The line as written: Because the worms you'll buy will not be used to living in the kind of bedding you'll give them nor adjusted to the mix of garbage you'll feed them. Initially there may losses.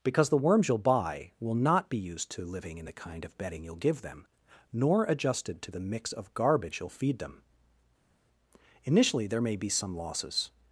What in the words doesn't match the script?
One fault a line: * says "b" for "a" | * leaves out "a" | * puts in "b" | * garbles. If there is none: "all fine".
* puts in "be some"